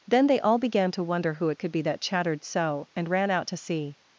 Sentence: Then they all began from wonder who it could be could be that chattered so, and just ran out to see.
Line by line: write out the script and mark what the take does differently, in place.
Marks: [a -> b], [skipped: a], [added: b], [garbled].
Then they all began [from -> to] wonder who it could be [skipped: could be] that chattered so, and [skipped: just] ran out to see.